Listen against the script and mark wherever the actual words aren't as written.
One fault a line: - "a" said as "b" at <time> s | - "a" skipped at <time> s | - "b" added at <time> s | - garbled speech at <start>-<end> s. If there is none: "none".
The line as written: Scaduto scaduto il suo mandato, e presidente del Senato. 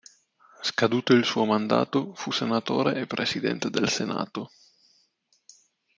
- "scaduto" skipped at 1.1 s
- "fu senatore" added at 2.1 s